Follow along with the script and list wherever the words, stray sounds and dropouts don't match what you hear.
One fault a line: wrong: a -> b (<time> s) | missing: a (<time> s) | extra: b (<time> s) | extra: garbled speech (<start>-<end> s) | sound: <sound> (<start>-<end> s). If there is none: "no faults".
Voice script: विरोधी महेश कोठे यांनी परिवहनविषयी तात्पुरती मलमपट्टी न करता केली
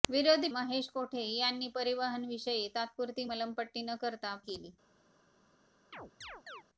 sound: chirp (5.9-6.6 s)